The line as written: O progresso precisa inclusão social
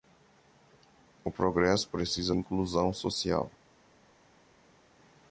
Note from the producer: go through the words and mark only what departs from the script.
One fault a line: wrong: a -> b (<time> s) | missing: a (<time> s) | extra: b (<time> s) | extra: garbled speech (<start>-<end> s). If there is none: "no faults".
no faults